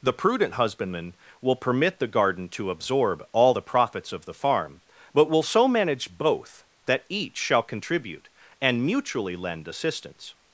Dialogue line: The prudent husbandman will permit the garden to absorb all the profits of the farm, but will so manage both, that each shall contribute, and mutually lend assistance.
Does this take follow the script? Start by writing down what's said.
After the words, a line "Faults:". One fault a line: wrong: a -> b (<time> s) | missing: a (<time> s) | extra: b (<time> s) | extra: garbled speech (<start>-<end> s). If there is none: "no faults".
The prudent husbandman will permit the garden to absorb all the profits of the farm, but will so manage both, that each shall contribute, and mutually lend assistance.
Faults:
no faults